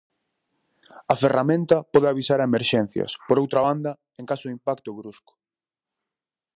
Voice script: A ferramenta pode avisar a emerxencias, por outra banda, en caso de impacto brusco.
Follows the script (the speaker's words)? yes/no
yes